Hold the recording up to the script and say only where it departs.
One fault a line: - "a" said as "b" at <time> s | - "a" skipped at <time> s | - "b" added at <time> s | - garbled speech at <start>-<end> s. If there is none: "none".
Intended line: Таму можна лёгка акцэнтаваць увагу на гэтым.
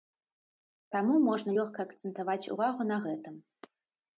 none